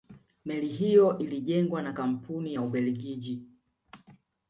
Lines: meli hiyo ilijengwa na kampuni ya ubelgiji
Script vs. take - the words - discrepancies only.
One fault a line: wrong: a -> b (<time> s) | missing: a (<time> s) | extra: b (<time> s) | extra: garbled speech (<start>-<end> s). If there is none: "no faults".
no faults